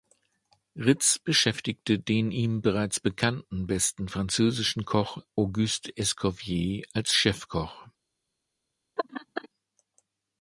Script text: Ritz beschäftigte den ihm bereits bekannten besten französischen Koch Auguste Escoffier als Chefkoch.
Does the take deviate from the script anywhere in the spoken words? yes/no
no